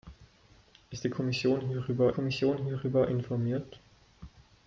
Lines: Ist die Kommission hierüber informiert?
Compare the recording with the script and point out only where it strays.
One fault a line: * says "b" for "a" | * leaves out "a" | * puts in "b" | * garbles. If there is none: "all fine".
* puts in "Kommission hierüber"